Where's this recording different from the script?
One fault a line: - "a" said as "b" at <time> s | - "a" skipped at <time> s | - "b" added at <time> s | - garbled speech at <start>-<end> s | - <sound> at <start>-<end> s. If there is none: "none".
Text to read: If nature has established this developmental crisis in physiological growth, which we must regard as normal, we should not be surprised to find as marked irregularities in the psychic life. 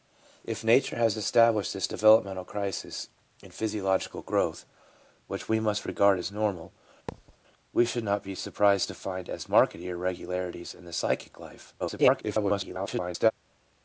- thud at 7.1-7.4 s
- garbled speech at 11.8-13.3 s